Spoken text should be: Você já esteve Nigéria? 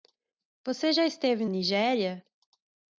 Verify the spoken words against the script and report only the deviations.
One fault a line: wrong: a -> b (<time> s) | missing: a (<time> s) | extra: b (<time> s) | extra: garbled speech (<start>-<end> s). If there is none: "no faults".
no faults